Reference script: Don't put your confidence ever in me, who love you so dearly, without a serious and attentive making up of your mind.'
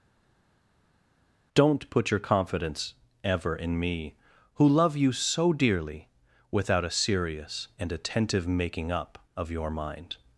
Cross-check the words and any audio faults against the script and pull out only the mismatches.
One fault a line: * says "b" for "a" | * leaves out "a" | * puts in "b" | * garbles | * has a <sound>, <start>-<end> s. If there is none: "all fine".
all fine